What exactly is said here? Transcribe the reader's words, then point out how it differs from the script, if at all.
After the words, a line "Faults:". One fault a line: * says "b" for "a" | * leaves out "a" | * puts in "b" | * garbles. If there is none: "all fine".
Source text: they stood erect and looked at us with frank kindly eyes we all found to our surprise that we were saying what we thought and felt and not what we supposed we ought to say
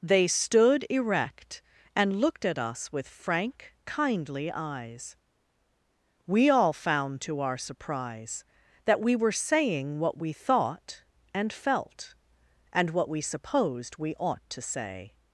they stood erect and looked at us with frank kindly eyes we all found to our surprise that we were saying what we thought and felt and what we supposed we ought to say
Faults:
* leaves out "not"